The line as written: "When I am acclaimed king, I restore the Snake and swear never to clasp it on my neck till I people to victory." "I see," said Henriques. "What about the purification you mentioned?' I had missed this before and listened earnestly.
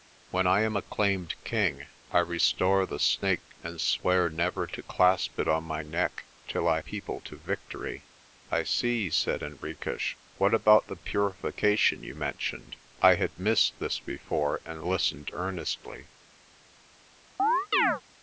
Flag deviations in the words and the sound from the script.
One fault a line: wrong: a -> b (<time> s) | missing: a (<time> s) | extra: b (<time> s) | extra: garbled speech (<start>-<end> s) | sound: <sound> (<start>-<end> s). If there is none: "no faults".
sound: chirp (17.4-18.0 s)